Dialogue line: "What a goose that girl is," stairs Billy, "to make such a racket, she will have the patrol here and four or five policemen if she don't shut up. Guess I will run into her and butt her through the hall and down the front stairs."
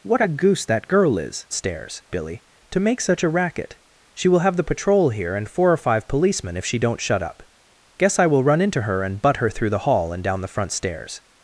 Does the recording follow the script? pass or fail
pass